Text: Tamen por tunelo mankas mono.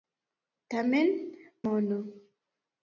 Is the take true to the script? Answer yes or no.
no